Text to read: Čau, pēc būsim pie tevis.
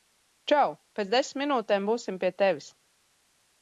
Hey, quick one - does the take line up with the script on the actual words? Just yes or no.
no